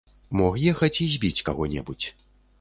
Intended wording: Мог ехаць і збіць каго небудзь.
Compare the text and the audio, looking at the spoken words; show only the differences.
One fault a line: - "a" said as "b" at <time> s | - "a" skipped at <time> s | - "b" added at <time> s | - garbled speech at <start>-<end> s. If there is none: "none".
none